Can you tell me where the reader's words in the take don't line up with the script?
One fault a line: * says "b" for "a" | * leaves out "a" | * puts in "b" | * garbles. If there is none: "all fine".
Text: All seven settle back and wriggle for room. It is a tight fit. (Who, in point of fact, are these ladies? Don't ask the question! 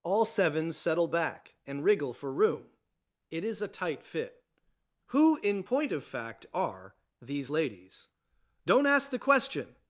all fine